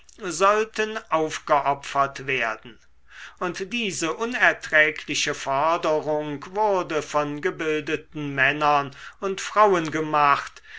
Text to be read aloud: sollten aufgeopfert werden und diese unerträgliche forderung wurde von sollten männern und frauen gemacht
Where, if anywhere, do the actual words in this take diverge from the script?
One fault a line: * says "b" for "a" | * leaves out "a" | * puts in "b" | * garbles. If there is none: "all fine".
* says "gebildeten" for "sollten"